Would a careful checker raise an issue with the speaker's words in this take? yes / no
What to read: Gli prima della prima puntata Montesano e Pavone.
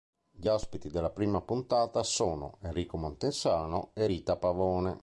yes